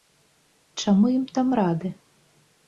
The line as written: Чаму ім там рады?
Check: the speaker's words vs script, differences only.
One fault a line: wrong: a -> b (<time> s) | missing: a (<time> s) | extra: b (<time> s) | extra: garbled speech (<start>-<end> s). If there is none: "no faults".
no faults